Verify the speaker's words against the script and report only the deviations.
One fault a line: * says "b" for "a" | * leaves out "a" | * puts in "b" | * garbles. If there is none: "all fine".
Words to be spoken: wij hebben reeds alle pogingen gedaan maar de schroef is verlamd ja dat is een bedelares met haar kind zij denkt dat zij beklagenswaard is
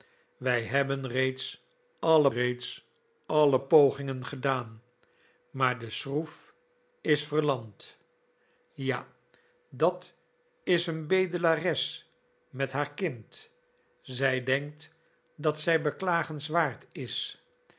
* puts in "reeds alle"